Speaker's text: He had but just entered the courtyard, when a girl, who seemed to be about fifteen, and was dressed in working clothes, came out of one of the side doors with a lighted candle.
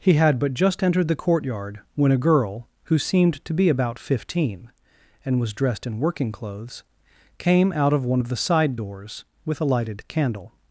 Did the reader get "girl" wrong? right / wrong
right